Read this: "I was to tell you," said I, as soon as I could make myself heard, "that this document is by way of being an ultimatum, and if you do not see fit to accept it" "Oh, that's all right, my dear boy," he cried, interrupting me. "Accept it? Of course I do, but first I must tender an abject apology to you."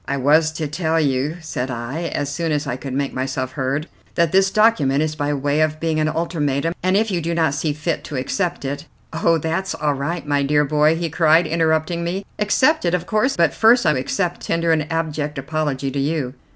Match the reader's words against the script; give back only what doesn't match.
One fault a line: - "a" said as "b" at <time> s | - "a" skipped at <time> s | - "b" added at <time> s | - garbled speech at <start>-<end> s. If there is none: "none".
- "I do" skipped at 13.4 s
- "must" said as "accept" at 13.9 s